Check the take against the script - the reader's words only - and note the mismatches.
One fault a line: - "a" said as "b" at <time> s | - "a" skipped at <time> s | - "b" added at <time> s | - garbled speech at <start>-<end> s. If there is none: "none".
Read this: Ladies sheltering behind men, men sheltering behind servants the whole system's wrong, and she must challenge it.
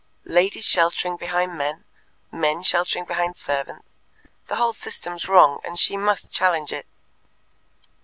none